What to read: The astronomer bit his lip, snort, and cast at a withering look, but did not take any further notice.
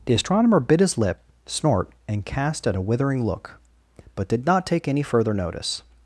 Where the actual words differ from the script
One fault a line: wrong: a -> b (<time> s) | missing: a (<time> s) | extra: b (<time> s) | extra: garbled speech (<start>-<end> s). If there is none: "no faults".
no faults